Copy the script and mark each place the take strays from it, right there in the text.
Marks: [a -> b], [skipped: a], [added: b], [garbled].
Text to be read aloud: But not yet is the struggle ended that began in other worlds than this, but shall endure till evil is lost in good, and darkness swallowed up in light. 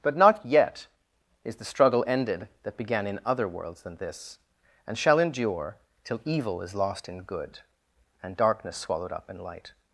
But not yet is the struggle ended that began in other worlds than this, [but -> and] shall endure till evil is lost in good, and darkness swallowed up in light.